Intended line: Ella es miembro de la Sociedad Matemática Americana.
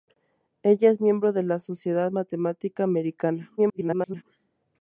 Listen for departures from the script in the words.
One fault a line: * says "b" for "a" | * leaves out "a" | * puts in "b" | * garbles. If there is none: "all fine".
* garbles